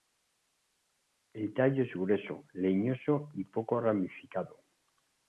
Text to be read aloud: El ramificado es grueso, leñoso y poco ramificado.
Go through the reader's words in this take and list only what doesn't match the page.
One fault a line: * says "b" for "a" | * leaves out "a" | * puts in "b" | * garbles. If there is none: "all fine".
* says "tallo" for "ramificado"